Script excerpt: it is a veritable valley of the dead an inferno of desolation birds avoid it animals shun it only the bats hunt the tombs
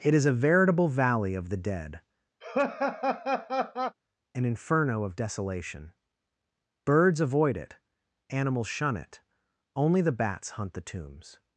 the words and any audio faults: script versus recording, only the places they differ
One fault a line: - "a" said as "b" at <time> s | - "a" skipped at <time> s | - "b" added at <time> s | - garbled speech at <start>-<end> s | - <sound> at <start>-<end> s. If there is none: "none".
- laugh at 2.4-4.0 s